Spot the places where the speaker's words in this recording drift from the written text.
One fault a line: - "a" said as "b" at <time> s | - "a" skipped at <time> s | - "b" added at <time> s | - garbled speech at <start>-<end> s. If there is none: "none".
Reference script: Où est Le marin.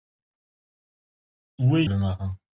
none